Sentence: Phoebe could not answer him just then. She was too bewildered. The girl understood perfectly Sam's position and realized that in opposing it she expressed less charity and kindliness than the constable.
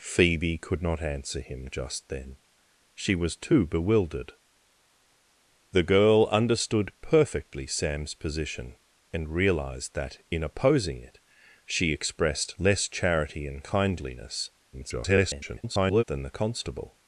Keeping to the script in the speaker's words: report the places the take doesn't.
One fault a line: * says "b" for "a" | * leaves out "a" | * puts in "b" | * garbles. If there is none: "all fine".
* garbles